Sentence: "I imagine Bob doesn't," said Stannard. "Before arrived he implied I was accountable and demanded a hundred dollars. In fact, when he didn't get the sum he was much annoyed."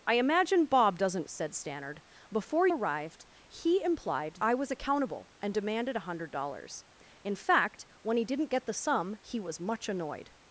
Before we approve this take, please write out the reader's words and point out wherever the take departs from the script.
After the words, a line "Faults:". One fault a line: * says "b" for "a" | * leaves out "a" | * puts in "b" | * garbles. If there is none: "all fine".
"I imagine Bob doesn't," said Stannard. "Before arrived he implied I was accountable and demanded a hundred dollars. In fact, when he didn't get the sum he was much annoyed."
Faults:
all fine